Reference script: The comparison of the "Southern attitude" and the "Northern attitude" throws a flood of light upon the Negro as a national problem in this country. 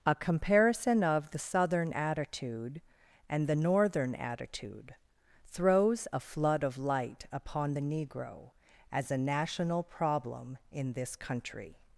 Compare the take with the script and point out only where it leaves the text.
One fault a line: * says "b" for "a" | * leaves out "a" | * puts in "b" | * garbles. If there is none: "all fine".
* says "A" for "The"